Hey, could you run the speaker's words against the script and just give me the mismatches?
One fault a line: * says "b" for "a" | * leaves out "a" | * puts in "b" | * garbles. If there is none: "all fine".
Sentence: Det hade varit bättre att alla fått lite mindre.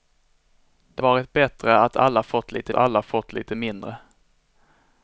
* leaves out "hade"
* puts in "alla fått lite"